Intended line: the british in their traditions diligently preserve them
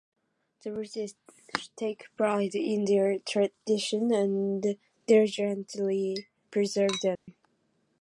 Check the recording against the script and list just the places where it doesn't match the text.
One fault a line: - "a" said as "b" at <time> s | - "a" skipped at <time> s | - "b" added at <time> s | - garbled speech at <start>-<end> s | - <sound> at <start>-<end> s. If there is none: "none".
- "take pride" added at 1.8 s
- "and" added at 4.1 s
- dropout at 7.2-7.3 s